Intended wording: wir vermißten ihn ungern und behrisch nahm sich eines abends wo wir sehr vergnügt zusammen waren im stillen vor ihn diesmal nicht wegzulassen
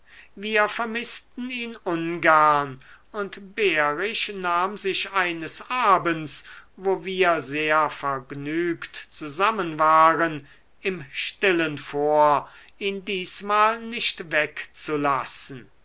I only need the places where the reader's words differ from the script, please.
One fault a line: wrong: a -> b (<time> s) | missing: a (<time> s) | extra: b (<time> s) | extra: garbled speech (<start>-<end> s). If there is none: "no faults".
no faults